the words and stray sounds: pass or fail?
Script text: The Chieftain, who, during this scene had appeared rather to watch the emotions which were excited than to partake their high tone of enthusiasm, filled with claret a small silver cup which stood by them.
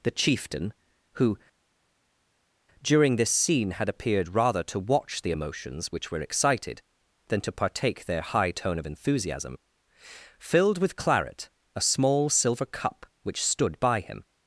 fail